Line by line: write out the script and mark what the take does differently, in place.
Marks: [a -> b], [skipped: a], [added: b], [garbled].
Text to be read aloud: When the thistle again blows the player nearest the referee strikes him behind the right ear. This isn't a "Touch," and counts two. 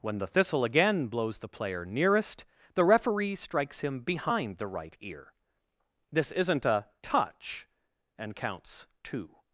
When the thistle again blows the player nearest the referee strikes him behind the right ear. This isn't a "Touch," and counts two.